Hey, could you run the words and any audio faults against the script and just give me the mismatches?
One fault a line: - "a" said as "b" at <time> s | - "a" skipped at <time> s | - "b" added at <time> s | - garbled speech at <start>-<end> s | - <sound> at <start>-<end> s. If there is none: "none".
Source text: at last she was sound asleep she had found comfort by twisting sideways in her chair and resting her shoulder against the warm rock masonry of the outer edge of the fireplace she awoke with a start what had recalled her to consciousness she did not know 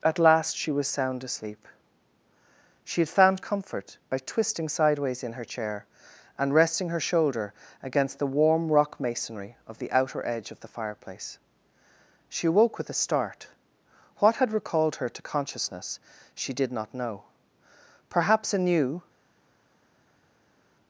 - "perhaps a new" added at 18.1 s